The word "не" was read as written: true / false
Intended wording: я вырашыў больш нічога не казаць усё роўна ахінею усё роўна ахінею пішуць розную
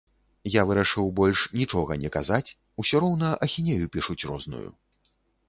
true